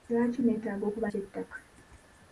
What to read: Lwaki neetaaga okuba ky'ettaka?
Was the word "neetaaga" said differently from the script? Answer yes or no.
no